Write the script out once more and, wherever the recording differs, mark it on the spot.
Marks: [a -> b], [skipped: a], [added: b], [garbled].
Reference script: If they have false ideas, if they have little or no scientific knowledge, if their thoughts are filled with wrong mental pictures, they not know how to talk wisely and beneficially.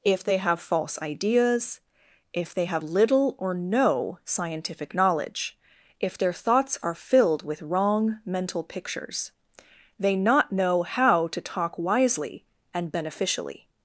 If they have false ideas, if they have little or no scientific knowledge, if their thoughts are filled with wrong mental pictures, they not know how to talk wisely and beneficially.